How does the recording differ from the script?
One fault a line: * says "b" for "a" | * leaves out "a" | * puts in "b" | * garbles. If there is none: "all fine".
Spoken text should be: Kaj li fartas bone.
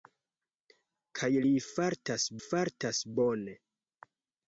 * puts in "fartas"